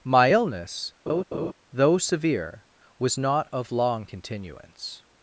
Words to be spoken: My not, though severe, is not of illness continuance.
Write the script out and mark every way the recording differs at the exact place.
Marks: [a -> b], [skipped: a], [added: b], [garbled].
My [not, -> illness] though severe, [is -> was] not of [illness -> long] continuance.